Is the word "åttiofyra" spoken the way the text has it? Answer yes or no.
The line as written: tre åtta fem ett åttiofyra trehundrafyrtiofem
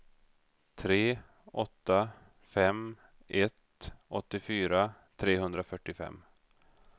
yes